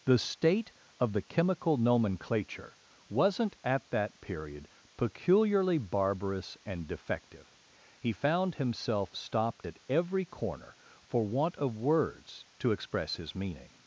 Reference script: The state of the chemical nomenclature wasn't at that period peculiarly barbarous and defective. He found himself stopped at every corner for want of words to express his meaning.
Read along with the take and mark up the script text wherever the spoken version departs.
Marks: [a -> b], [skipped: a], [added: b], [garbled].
The state of the chemical nomenclature wasn't at that period peculiarly barbarous and defective. He found himself stopped at every corner for want of words to express his meaning.